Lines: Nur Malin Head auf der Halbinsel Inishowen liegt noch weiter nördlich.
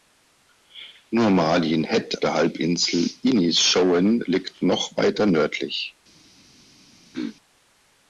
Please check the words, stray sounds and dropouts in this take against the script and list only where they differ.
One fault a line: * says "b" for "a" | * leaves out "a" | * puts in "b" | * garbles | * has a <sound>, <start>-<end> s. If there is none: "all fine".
* leaves out "auf"
* has a throat clearing, 7.1-7.4 s